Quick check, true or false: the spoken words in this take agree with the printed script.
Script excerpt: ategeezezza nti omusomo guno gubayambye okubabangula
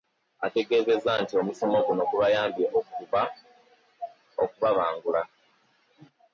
true